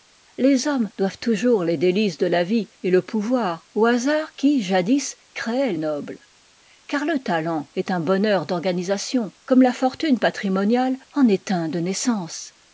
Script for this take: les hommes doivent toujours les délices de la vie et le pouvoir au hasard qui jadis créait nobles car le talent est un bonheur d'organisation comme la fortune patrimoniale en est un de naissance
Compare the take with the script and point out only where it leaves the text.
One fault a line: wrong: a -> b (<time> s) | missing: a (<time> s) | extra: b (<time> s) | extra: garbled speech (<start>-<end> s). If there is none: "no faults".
no faults